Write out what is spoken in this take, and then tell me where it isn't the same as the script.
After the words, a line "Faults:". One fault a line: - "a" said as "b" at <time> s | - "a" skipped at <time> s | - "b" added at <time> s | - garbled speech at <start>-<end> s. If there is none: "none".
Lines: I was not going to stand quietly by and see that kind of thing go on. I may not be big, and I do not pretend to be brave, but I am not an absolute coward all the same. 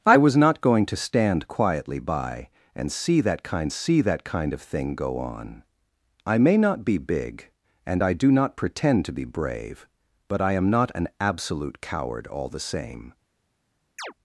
I was not going to stand quietly by and see that kind see that kind of thing go on. I may not be big, and I do not pretend to be brave, but I am not an absolute coward all the same.
Faults:
- "see that kind" added at 3.7 s